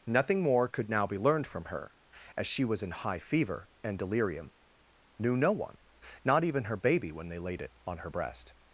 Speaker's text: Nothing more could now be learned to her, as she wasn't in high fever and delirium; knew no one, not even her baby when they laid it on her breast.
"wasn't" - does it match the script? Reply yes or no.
no